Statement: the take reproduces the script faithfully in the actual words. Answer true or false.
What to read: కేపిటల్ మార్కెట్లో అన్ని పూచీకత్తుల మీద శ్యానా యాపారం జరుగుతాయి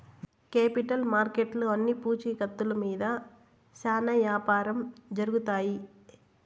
true